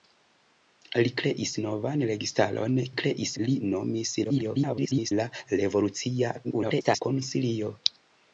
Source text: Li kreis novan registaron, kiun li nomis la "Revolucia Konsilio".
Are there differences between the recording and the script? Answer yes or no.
yes